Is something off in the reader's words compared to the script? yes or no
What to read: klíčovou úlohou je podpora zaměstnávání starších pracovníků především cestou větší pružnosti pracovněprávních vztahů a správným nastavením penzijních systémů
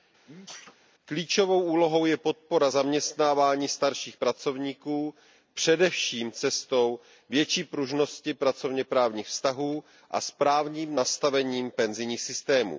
no